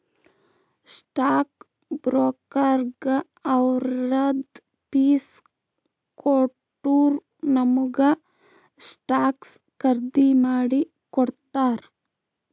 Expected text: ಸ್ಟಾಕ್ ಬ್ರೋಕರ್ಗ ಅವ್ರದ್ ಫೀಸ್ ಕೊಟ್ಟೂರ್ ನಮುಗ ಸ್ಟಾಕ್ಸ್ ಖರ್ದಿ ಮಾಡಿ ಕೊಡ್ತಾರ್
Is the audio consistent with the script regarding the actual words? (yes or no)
yes